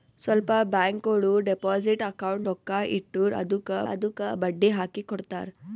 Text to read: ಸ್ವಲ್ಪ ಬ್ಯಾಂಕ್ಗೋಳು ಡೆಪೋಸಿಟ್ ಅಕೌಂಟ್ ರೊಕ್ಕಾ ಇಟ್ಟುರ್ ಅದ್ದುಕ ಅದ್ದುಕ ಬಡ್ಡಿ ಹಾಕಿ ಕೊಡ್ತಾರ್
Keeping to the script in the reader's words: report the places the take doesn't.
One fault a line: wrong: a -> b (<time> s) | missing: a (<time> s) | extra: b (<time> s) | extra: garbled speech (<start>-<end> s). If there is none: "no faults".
no faults